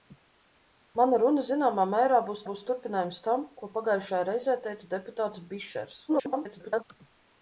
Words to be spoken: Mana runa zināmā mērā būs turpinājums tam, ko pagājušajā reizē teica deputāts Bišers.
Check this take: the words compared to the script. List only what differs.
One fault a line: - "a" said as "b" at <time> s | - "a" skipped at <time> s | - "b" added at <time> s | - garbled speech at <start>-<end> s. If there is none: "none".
- "būs" added at 2.5 s
- garbled speech at 6.1-6.8 s